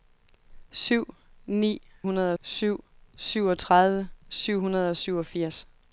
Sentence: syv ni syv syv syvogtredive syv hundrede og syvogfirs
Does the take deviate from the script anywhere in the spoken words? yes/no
yes